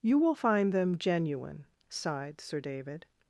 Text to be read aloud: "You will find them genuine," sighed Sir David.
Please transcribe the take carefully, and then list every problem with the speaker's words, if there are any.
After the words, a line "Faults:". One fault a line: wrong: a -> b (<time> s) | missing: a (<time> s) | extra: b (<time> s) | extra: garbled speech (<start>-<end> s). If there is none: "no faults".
"You will find them genuine," sighed Sir David.
Faults:
no faults